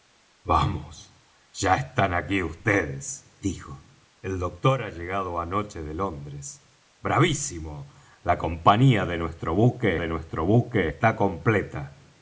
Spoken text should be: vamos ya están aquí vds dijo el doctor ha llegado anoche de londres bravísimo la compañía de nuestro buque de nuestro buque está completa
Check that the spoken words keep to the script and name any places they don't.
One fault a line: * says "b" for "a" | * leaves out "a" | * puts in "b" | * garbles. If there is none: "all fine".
all fine